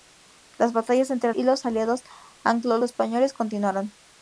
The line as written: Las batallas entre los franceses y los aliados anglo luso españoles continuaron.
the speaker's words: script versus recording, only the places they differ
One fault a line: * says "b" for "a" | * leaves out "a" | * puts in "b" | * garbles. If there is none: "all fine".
* leaves out "los franceses"
* leaves out "luso"